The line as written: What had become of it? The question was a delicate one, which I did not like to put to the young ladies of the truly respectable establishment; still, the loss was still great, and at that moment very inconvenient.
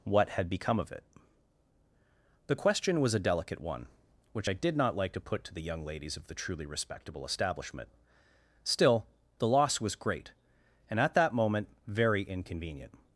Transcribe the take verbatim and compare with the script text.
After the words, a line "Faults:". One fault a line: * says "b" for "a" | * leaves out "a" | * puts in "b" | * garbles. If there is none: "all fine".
What had become of it? The question was a delicate one, which I did not like to put to the young ladies of the truly respectable establishment; still, the loss was great, and at that moment very inconvenient.
Faults:
* leaves out "still"